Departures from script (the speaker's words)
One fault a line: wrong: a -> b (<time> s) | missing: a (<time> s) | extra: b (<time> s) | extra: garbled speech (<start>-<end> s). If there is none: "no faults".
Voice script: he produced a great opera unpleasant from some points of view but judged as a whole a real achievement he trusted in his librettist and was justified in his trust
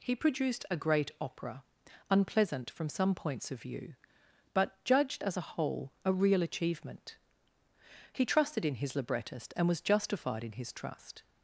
no faults